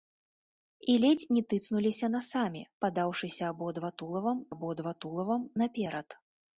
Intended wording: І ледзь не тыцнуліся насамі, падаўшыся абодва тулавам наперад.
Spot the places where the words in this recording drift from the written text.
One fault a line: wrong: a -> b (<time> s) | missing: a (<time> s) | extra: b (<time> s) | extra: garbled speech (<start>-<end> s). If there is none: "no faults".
extra: абодва тулавам (4.5 s)